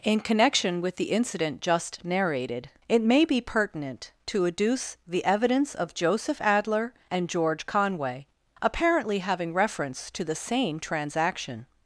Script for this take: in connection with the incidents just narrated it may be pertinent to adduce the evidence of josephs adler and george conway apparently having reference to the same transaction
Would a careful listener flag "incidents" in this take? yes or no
yes